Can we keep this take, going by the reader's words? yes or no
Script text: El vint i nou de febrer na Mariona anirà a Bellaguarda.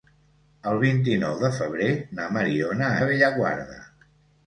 no